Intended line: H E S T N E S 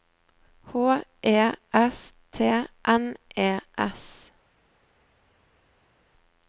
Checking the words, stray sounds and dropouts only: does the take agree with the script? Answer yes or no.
yes